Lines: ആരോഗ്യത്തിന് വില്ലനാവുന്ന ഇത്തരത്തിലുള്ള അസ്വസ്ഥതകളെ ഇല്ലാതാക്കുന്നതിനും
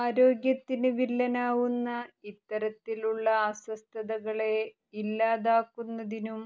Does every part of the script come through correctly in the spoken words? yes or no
yes